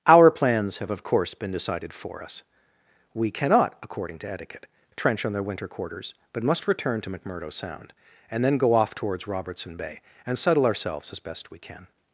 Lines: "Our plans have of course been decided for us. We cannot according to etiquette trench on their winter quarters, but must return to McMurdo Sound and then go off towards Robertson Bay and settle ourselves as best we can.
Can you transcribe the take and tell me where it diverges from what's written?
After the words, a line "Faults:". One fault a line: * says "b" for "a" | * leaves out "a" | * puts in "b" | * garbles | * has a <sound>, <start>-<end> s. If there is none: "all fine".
"Our plans have of course been decided for us. We cannot according to etiquette trench on their winter quarters, but must return to McMurdo Sound and then go off towards Robertson Bay and settle ourselves as best we can.
Faults:
all fine